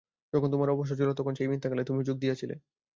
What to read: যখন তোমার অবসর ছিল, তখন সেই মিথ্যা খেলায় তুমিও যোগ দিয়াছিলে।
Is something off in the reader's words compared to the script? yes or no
no